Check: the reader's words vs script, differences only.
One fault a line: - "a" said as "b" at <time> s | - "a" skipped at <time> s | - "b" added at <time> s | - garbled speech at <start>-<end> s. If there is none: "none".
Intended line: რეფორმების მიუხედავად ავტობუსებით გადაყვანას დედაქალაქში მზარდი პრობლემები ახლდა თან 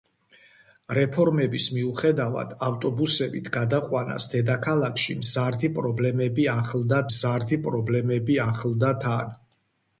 - "მზარდი პრობლემები ახლდა" added at 7.1 s